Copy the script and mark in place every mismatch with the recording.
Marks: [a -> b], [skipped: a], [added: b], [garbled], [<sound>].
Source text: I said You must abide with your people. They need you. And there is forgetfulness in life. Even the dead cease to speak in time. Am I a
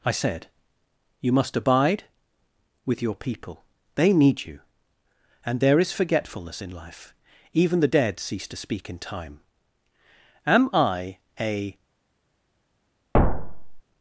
I said You must abide with your people. They need you. And there is forgetfulness in life. Even the dead cease to speak in time. Am I a [thud]